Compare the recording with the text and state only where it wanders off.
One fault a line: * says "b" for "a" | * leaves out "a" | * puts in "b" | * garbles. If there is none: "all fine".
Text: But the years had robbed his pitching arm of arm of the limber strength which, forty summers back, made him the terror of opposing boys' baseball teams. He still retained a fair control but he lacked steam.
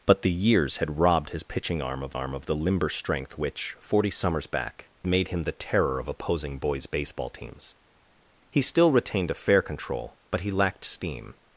all fine